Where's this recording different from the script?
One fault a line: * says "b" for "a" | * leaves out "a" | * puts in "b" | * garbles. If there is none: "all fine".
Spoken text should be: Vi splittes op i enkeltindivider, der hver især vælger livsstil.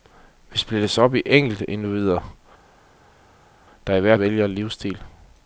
* leaves out "især"